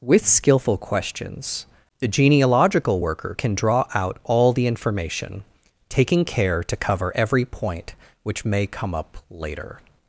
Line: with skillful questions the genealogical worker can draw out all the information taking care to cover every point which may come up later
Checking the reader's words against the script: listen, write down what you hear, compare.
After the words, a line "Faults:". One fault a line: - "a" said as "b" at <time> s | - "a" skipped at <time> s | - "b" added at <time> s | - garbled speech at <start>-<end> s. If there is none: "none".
with skillful questions the genealogical worker can draw out all the information taking care to cover every point which may come up later
Faults:
none